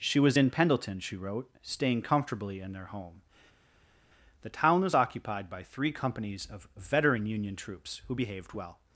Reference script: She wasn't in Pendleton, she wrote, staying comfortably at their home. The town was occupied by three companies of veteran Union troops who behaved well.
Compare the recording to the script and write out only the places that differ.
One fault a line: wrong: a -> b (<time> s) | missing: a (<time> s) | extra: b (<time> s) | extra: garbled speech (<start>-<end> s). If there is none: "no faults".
wrong: wasn't -> was (0.2 s)
wrong: at -> in (2.6 s)